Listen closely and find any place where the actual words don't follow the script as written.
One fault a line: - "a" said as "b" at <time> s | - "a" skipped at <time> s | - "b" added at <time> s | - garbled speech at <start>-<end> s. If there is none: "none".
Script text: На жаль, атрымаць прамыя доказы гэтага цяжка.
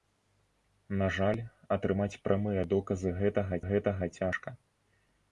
- "гэтага" added at 3.7 s